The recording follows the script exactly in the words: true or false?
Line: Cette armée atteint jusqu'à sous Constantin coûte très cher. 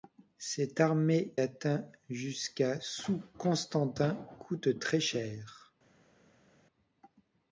true